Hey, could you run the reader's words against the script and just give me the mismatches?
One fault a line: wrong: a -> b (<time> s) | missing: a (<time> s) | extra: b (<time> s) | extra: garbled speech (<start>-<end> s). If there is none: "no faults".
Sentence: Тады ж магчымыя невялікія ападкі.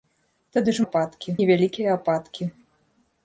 wrong: магчымыя -> ападкі (0.9 s)